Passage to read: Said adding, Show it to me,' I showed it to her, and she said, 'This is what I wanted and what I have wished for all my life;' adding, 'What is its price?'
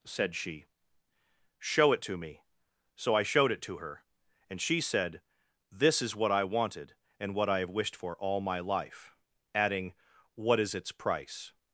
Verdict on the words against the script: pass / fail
fail